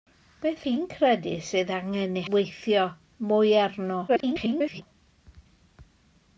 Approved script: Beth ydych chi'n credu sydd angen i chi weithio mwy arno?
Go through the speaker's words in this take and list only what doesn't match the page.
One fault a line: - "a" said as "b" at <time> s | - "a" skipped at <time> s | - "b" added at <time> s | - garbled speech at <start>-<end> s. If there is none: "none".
- "ydych" skipped at 0.6 s
- "chi" skipped at 2.2 s
- garbled speech at 4.1-4.8 s